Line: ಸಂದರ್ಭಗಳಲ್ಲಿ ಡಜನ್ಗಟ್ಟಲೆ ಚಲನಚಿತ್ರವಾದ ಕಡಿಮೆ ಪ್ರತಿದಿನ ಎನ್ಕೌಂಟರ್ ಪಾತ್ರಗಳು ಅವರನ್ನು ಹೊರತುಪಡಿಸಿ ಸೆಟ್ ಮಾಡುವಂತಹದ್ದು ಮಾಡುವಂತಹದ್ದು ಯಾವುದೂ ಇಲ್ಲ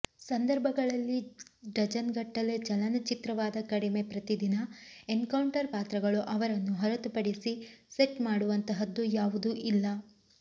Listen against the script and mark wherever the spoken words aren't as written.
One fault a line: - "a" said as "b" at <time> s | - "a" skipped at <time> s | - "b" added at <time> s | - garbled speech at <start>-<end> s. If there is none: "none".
- "ಮಾಡುವಂತಹದ್ದು" skipped at 9.1 s